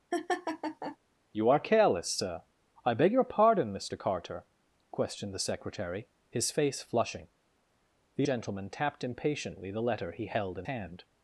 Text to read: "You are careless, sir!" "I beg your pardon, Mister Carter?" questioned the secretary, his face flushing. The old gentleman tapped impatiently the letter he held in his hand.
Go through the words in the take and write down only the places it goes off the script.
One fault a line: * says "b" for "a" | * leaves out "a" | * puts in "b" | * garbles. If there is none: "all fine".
* leaves out "old"
* leaves out "his"